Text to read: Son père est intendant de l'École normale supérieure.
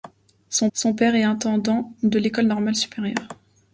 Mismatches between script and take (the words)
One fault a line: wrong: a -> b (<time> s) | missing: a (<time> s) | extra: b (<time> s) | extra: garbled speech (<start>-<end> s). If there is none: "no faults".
extra: son (0.7 s)